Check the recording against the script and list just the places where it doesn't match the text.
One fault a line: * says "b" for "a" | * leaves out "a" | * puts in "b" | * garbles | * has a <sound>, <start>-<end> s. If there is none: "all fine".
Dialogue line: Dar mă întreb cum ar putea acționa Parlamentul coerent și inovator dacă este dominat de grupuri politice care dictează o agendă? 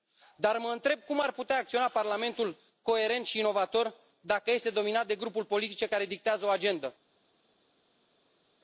all fine